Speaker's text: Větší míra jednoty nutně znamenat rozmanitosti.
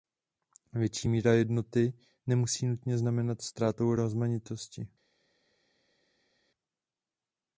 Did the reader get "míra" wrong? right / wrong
right